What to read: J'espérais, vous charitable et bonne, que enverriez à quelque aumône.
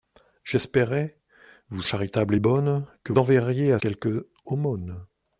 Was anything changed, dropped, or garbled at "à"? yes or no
no